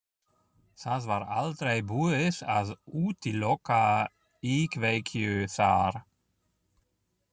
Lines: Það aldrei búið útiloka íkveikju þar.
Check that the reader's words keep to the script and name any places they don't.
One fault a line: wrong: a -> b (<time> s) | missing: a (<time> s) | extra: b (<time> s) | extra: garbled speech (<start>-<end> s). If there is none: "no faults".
extra: var (1.1 s)
extra: að (2.5 s)